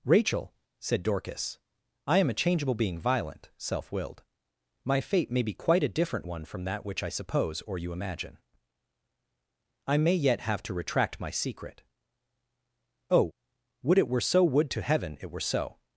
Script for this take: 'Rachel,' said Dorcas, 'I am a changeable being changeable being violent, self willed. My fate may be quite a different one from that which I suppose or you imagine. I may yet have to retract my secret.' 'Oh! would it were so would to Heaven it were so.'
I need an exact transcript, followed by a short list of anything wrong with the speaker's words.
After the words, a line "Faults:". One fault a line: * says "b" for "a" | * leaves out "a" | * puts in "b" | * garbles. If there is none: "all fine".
'Rachel,' said Dorcas, 'I am a changeable being violent, self willed. My fate may be quite a different one from that which I suppose or you imagine. I may yet have to retract my secret.' 'Oh! would it were so would to Heaven it were so.'
Faults:
* leaves out "changeable being"